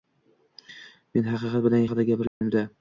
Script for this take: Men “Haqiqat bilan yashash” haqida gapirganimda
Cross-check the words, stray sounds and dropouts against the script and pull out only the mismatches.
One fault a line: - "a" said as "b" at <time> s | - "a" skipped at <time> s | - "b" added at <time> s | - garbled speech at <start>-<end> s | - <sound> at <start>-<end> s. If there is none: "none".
- "yashash" skipped at 1.9 s
- dropout at 2.3-2.4 s